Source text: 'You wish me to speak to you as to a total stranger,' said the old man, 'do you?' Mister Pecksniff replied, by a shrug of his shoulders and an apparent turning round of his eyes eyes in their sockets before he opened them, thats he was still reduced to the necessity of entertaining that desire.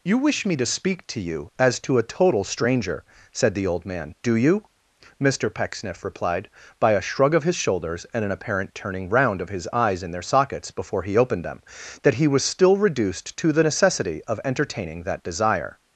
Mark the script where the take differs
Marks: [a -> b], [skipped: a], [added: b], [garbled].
'You wish me to speak to you as to a total stranger,' said the old man, 'do you?' Mister Pecksniff replied, by a shrug of his shoulders and an apparent turning round of his eyes [skipped: eyes] in their sockets before he opened them, [thats -> that] he was still reduced to the necessity of entertaining that desire.